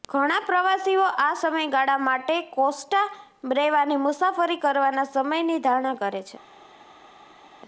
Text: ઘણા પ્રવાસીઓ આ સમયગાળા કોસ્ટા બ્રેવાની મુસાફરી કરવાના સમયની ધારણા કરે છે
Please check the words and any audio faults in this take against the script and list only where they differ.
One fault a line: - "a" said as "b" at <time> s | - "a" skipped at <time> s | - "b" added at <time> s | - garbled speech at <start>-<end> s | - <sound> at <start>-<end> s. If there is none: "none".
- "માટે" added at 2.0 s